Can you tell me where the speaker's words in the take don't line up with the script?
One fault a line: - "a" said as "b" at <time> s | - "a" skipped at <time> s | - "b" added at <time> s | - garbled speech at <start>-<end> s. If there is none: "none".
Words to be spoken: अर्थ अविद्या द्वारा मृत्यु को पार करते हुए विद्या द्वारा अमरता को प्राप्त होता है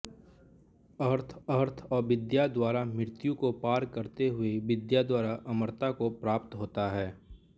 - "अर्थ" added at 1.5 s